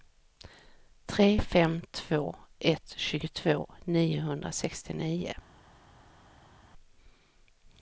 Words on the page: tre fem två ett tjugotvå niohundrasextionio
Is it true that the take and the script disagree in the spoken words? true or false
false